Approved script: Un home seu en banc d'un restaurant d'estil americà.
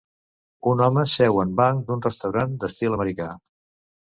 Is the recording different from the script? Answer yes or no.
no